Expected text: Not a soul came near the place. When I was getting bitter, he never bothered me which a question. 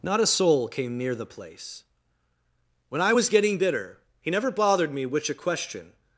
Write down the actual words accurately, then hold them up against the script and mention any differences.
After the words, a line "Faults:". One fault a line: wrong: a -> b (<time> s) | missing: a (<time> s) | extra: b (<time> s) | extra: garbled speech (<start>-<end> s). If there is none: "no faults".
Not a soul came near the place. When I was getting bitter, he never bothered me which a question.
Faults:
no faults